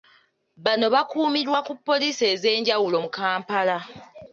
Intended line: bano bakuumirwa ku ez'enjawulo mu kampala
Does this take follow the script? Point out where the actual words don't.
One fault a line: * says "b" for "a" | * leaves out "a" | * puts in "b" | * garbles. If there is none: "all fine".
* puts in "poliisi"